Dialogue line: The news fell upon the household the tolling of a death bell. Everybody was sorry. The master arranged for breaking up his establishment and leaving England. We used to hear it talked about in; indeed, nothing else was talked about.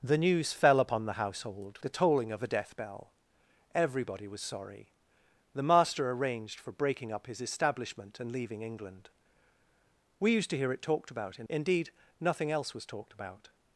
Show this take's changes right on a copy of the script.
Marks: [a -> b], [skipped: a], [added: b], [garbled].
The news fell upon the household the tolling of a death bell. Everybody was sorry. The master arranged for breaking up his establishment and leaving England. We used to hear it talked about in; indeed, nothing else was talked about.